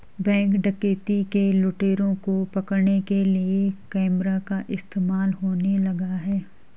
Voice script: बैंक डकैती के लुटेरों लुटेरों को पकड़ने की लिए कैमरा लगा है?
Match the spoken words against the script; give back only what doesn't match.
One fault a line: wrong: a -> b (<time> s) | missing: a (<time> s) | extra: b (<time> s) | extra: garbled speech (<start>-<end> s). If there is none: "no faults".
missing: लुटेरों (2.1 s)
wrong: की -> के (3.0 s)
extra: का इस्तेमाल होने (4.4 s)